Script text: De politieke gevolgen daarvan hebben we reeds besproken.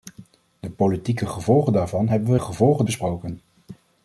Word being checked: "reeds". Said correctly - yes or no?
no